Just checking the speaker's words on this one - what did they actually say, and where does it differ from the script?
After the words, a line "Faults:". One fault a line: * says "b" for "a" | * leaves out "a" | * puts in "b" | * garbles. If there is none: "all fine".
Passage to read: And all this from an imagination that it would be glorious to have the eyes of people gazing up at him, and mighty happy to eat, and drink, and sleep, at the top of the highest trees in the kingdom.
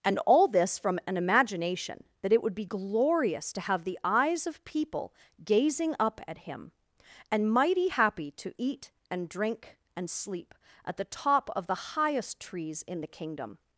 And all this from an imagination that it would be glorious to have the eyes of people gazing up at him, and mighty happy to eat, and drink, and sleep, at the top of the highest trees in the kingdom.
Faults:
all fine